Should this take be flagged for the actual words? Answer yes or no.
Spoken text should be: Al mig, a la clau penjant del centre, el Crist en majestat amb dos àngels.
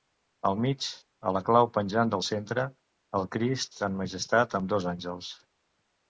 no